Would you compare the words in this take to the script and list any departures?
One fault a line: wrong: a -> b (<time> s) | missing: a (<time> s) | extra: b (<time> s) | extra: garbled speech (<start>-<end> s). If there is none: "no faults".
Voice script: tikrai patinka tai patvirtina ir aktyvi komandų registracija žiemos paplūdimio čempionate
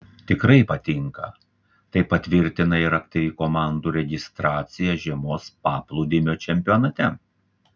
no faults